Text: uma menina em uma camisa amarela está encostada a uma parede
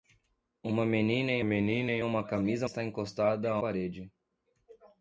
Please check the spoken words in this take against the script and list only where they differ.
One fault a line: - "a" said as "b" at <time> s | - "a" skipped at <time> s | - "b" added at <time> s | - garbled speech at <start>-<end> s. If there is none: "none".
- "menina em" added at 1.4 s
- "amarela" skipped at 2.7 s
- "uma" skipped at 3.6 s